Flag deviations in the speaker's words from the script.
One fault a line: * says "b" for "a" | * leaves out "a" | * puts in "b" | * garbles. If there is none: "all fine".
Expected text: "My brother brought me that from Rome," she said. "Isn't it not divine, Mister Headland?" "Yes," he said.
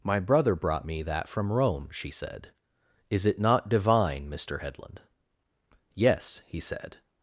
* says "Is" for "Isn't"